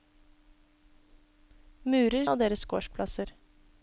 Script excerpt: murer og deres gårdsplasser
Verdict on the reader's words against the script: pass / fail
pass